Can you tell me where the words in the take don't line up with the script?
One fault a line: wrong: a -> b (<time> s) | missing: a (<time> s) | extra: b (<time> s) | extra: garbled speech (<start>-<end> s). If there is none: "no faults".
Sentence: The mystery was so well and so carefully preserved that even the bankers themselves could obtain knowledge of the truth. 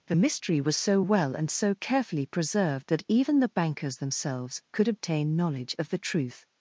no faults